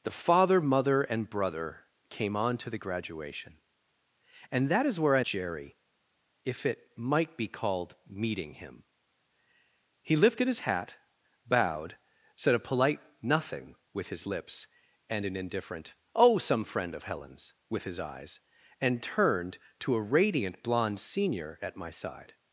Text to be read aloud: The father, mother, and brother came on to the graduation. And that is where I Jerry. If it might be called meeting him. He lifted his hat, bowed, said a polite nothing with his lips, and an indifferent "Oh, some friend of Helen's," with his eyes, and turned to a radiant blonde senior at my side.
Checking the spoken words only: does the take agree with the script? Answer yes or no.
yes